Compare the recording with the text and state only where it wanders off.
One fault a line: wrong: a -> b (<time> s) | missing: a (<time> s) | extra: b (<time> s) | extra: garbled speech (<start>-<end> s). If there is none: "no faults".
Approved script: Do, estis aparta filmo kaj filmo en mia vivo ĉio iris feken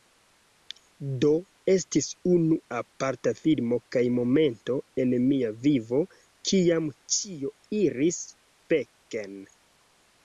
extra: unu (2.4 s)
wrong: filmo -> momento (4.2 s)
extra: kiam (6.5 s)